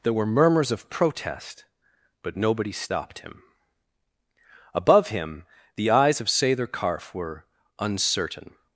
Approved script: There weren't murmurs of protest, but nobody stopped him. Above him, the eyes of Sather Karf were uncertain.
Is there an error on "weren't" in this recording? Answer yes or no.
yes